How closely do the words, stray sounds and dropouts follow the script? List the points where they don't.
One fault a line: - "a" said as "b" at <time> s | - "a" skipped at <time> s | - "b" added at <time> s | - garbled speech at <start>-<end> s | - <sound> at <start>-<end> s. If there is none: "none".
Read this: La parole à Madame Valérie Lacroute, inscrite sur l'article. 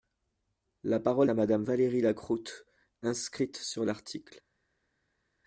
none